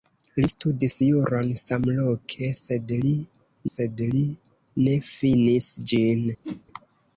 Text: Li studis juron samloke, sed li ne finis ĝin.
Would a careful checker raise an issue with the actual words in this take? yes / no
yes